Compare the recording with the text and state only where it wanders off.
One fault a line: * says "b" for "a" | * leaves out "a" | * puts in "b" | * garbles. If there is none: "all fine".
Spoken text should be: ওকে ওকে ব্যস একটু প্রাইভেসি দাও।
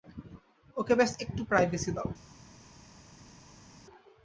* leaves out "ওকে"